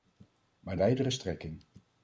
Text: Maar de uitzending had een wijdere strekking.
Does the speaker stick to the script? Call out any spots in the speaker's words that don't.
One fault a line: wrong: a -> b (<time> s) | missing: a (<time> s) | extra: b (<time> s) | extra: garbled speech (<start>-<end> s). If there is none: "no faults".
missing: uitzending had een (0.8 s)